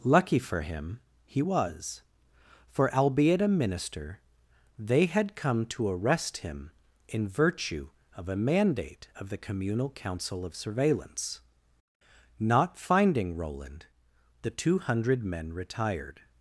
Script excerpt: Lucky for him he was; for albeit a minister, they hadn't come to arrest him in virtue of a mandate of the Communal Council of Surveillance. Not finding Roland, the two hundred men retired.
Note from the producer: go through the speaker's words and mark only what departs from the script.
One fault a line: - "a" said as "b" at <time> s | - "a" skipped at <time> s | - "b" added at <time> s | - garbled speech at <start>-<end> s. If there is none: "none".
- "hadn't" said as "had" at 5.1 s